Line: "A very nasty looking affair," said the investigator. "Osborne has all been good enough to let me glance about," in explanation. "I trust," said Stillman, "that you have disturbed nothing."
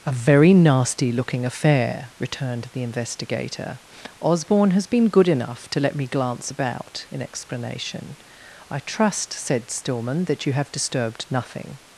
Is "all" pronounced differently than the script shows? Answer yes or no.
yes